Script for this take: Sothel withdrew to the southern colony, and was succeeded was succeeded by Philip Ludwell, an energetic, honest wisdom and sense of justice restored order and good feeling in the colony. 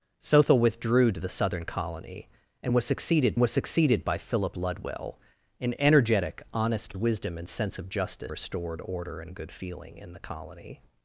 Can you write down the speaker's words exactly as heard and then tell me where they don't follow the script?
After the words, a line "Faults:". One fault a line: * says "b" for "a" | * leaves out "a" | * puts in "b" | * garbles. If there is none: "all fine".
Sothel withdrew to the southern colony, and was succeeded was succeeded by Philip Ludwell, an energetic, honest wisdom and sense of justice restored order and good feeling in the colony.
Faults:
all fine